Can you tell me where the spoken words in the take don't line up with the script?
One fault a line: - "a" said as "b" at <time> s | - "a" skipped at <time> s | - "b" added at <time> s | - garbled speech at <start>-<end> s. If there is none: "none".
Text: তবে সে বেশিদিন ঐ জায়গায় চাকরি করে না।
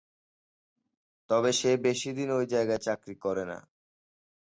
none